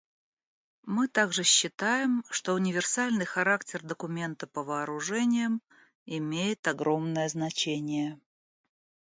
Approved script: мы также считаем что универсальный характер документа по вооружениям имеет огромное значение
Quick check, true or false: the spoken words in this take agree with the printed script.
true